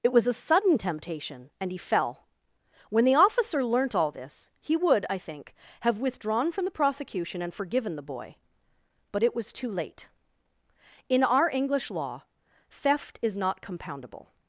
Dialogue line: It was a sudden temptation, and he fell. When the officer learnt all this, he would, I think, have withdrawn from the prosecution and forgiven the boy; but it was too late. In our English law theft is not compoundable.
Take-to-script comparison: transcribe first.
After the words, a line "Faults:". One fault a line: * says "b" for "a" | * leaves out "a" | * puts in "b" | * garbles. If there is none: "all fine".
It was a sudden temptation, and he fell. When the officer learnt all this, he would, I think, have withdrawn from the prosecution and forgiven the boy; but it was too late. In our English law theft is not compoundable.
Faults:
all fine